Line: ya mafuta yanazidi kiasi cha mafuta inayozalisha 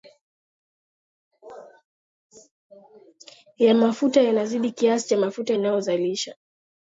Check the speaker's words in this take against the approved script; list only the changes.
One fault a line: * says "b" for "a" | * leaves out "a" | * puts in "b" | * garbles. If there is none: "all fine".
all fine